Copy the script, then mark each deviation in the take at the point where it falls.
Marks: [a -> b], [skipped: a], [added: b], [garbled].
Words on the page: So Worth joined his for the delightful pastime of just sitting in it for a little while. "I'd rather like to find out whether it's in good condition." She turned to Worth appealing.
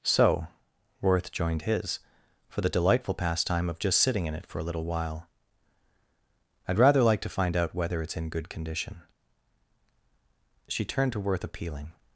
So Worth joined his for the delightful pastime of just sitting in it for a little while. "I'd rather like to find out whether it's in good condition." She turned to Worth appealing.